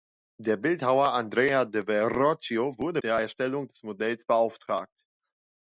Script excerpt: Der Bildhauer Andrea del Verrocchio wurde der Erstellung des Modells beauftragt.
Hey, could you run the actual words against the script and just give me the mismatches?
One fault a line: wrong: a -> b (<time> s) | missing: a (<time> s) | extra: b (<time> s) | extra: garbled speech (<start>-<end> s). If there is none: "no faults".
no faults